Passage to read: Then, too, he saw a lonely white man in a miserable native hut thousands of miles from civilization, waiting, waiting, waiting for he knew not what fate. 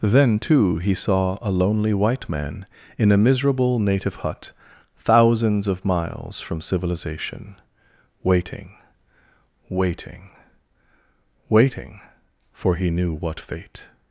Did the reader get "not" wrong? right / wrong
wrong